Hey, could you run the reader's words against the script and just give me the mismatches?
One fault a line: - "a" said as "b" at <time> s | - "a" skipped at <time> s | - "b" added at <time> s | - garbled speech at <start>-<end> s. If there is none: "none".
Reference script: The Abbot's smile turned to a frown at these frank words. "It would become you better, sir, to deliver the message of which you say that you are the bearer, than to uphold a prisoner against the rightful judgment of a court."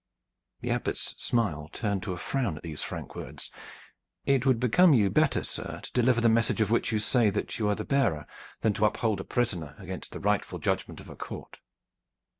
none